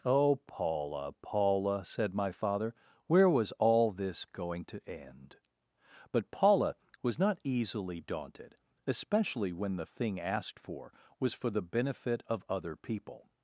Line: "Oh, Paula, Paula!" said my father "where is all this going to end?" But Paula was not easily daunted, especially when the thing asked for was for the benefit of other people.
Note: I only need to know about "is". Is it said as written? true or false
false